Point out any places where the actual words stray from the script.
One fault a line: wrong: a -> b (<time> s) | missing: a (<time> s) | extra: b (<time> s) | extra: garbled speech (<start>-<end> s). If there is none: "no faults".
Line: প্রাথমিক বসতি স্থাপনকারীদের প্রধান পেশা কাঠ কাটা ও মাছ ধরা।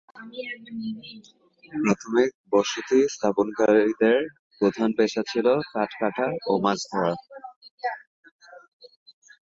extra: ছিল (5.3 s)